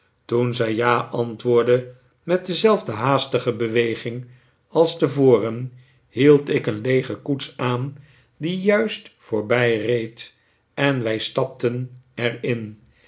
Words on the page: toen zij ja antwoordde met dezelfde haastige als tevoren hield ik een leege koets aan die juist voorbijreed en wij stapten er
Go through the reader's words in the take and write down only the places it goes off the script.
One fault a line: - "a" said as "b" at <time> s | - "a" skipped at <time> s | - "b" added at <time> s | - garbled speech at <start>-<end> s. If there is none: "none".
- "beweging" added at 3.5 s